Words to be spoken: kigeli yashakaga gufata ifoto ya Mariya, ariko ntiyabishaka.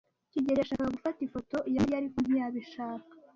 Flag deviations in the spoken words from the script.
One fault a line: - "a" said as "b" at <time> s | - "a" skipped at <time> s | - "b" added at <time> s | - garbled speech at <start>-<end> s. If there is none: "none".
none